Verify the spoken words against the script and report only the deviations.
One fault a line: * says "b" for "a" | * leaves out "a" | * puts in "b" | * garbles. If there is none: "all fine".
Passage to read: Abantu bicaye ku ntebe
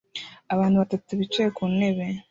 * puts in "batatu"